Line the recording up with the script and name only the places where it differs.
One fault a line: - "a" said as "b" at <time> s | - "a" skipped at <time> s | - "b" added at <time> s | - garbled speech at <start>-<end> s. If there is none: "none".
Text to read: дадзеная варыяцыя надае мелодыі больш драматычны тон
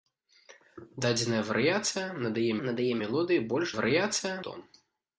- "надае" added at 2.7 s
- "драматычны" said as "варыяцыя" at 3.8 s